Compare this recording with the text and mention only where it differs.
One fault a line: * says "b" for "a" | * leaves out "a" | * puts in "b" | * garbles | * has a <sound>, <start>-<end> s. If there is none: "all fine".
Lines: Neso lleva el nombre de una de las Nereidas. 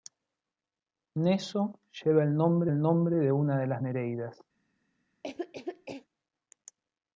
* puts in "el nombre"
* has a cough, 5.2-6.1 s